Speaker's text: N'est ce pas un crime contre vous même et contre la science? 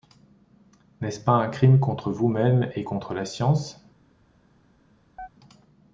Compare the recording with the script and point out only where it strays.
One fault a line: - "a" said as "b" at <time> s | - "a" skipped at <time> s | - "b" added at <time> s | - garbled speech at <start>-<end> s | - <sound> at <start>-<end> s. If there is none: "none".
- chirp at 5.2-5.3 s